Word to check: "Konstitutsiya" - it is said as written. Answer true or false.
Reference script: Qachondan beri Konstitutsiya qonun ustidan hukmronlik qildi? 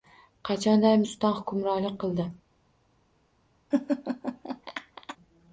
false